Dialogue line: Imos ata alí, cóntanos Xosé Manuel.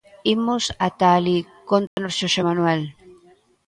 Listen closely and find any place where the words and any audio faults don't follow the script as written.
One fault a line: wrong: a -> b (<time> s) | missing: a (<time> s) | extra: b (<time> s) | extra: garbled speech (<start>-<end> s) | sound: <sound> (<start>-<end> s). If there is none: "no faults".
sound: dropout (1.9-2.0 s)